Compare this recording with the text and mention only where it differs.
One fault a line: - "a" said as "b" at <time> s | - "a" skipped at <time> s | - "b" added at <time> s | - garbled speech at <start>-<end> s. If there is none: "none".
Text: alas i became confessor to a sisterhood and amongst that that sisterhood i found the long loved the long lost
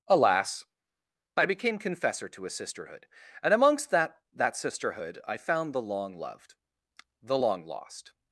none